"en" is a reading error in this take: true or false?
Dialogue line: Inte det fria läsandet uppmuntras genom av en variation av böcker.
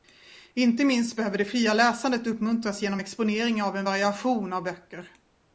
false